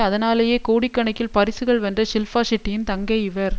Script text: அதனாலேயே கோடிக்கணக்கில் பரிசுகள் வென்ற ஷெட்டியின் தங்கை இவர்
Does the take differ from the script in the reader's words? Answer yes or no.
yes